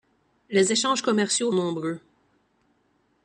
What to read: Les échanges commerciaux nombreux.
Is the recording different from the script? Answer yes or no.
no